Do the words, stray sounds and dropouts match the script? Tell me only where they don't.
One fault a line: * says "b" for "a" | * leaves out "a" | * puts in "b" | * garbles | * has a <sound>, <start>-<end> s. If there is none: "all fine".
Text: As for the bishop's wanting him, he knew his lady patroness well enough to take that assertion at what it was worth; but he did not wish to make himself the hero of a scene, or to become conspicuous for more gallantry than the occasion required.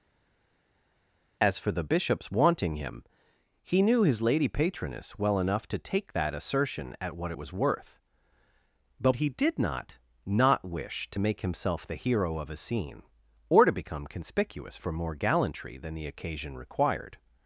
* puts in "not"